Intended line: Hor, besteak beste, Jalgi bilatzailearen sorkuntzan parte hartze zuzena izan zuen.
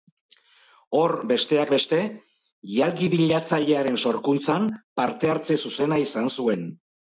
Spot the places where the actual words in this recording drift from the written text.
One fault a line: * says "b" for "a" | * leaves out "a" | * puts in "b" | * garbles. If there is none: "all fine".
all fine